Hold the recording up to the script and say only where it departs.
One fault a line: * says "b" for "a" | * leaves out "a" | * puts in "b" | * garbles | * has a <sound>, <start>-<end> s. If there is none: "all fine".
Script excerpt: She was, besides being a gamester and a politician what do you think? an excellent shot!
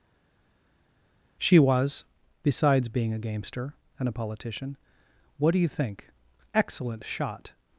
* leaves out "an"